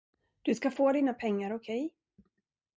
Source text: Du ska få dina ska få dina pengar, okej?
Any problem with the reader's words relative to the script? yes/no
yes